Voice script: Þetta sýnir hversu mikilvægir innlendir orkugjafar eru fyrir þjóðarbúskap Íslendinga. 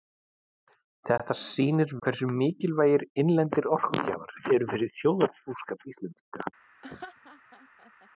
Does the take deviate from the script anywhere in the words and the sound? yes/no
yes